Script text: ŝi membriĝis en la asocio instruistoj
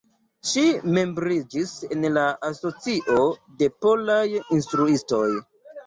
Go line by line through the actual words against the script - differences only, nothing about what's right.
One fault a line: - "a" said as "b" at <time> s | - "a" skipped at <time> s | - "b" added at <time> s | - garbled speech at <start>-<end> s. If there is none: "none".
- "de polaj" added at 3.6 s